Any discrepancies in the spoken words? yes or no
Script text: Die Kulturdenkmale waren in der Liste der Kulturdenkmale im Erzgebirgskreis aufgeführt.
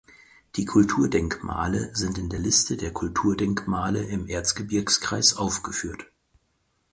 yes